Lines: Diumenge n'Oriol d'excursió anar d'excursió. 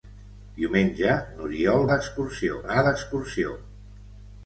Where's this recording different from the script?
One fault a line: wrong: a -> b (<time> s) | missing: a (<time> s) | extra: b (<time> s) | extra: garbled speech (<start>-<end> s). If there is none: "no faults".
no faults